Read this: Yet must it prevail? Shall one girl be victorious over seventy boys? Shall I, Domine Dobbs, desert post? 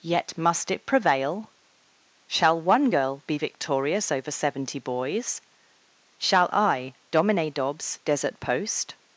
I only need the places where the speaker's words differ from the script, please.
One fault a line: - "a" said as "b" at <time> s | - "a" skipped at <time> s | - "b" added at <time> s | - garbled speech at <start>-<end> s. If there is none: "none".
none